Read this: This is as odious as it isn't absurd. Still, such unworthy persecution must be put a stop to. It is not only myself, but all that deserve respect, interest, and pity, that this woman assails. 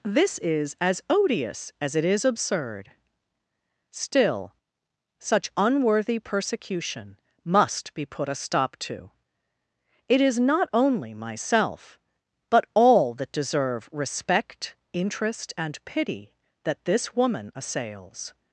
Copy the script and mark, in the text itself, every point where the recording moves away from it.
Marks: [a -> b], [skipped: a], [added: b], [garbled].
This is as odious as it [isn't -> is] absurd. Still, such unworthy persecution must be put a stop to. It is not only myself, but all that deserve respect, interest, and pity, that this woman assails.